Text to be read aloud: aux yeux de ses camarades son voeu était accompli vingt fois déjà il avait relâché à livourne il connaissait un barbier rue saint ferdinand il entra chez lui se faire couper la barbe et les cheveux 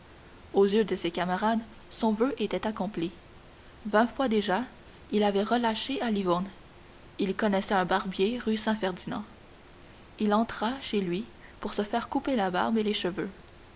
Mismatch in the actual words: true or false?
true